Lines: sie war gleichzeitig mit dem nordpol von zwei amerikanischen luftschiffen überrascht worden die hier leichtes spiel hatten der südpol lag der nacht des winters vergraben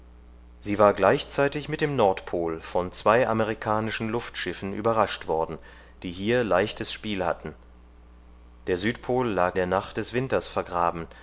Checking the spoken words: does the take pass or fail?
pass